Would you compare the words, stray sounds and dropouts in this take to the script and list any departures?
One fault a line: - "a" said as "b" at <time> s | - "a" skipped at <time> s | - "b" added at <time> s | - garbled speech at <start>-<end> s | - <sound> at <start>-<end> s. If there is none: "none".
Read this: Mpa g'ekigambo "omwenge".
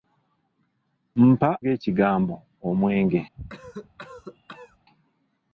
- cough at 3.4-4.8 s